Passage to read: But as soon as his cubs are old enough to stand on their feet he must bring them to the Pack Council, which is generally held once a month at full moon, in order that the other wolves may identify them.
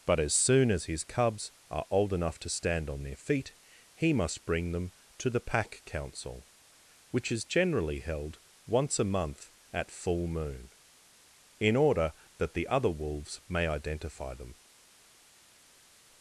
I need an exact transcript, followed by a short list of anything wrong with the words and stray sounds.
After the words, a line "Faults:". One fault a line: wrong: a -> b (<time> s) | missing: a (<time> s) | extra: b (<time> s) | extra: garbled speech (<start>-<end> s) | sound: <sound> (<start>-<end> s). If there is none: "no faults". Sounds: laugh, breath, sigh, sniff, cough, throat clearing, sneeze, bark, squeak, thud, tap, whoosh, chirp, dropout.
But as soon as his cubs are old enough to stand on their feet he must bring them to the Pack Council, which is generally held once a month at full moon, in order that the other wolves may identify them.
Faults:
no faults